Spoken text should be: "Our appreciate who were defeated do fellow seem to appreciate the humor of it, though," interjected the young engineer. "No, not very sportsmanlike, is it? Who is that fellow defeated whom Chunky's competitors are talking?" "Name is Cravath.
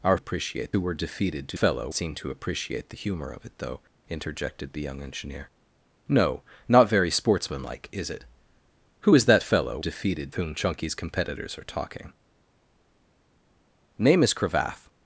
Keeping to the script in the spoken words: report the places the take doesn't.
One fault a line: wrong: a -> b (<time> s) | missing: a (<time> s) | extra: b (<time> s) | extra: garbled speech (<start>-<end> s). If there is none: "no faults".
no faults